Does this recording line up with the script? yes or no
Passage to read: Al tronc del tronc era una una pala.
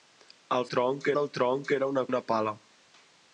yes